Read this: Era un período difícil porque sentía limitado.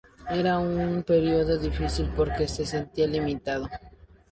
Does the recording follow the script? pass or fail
fail